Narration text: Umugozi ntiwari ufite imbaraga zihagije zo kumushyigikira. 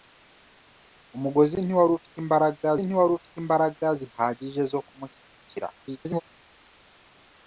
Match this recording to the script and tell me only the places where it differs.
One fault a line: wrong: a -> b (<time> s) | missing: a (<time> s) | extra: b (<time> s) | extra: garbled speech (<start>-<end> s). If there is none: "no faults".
extra: ntiwari ufite imbaraga (2.8 s)
extra: garbled speech (5.8-6.2 s)